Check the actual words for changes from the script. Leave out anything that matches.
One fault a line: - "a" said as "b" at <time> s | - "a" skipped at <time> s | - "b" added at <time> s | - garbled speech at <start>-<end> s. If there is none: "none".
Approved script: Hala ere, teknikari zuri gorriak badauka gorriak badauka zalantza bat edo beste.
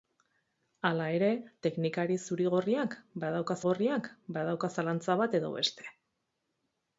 none